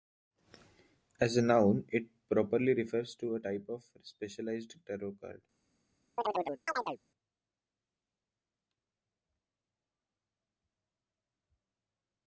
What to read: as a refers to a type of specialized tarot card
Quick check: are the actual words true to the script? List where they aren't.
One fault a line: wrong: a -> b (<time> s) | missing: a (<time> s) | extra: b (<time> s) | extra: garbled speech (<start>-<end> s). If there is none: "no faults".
extra: noun it properly (1.4 s)